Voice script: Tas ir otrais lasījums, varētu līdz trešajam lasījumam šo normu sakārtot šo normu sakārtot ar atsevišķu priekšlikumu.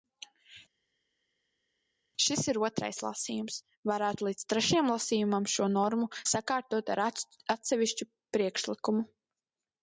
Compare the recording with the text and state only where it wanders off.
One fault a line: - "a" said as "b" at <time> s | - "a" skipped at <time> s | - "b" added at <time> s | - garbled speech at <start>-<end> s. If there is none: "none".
- "Tas" said as "Šis" at 2.2 s
- "šo normu sakārtot" skipped at 6.9 s